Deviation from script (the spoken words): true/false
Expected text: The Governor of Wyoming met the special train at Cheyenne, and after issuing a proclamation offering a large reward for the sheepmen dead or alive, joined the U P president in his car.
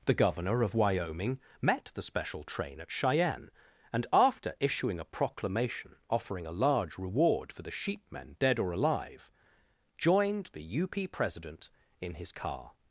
false